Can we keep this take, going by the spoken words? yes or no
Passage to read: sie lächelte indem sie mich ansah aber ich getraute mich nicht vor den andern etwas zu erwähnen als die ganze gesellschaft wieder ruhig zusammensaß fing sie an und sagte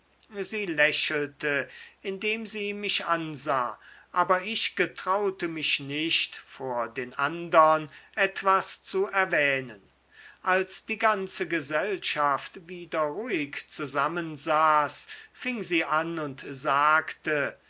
yes